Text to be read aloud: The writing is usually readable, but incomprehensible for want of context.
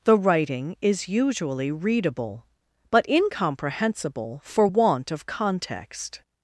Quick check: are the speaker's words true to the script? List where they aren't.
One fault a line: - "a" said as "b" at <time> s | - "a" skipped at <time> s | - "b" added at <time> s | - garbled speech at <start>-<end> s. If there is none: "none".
none